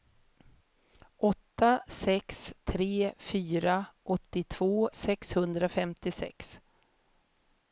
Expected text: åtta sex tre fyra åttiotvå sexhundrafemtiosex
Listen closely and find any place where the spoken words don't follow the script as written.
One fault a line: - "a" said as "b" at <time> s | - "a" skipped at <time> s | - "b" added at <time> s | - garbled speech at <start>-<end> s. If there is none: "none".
none